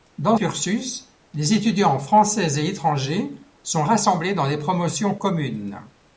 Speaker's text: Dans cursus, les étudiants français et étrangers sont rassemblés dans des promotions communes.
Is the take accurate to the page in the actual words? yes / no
yes